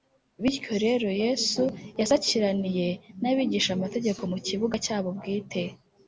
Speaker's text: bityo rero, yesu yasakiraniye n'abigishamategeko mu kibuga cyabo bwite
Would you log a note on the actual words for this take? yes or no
no